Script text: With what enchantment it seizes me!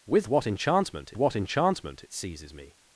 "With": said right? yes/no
yes